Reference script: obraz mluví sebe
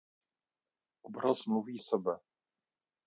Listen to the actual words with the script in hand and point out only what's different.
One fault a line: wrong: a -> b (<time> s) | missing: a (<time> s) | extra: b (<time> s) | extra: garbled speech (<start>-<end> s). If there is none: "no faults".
no faults